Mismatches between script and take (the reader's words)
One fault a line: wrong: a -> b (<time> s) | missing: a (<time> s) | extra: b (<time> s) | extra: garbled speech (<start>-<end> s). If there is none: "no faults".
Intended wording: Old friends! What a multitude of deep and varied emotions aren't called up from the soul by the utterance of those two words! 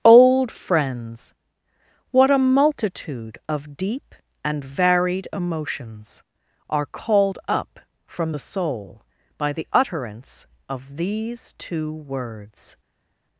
wrong: aren't -> are (6.7 s)
wrong: those -> these (11.0 s)